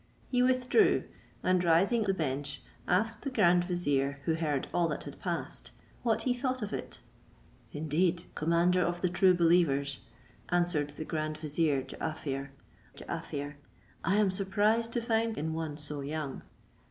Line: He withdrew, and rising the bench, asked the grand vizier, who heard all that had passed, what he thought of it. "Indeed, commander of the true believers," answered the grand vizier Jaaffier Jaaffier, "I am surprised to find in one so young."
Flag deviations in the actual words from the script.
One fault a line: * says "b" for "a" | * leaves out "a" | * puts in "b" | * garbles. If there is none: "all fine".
all fine